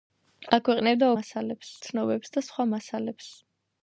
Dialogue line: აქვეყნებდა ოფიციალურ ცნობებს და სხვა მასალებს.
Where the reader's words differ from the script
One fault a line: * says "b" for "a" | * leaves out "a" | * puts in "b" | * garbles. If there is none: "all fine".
* says "მასალებს" for "ოფიციალურ"